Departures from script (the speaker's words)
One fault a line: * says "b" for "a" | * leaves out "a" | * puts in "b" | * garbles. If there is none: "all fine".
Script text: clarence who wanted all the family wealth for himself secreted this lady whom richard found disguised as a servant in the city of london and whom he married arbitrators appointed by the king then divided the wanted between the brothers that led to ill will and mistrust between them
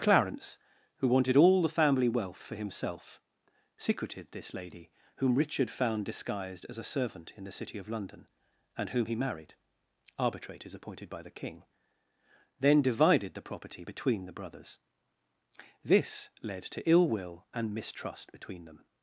* says "property" for "wanted"
* says "this" for "that"